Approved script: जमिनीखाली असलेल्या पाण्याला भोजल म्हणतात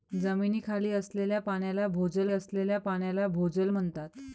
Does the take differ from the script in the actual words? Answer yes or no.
yes